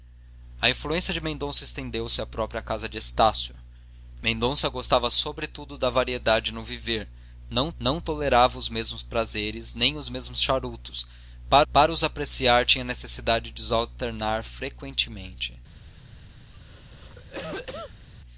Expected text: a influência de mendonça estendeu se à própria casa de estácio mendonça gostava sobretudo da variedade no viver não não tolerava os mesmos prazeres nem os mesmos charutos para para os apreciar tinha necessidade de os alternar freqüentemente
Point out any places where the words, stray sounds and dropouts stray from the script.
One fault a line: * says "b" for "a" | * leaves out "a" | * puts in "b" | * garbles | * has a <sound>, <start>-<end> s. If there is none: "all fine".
* has a cough, 16.5-18.1 s